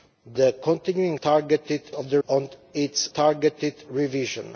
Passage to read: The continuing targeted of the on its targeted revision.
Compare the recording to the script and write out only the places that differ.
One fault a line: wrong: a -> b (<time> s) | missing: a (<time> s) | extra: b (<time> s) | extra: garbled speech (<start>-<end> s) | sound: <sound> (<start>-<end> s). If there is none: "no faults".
no faults